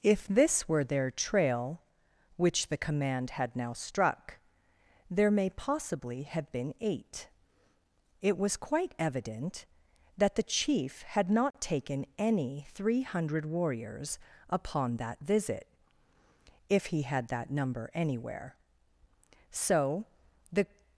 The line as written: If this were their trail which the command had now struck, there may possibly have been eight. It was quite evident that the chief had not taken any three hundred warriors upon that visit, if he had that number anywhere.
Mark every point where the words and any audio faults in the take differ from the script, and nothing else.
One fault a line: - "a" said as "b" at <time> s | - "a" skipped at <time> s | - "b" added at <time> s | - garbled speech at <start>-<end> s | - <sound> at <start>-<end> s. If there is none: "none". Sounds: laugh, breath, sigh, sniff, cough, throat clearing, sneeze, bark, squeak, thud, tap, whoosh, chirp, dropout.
- "So the" added at 19.5 s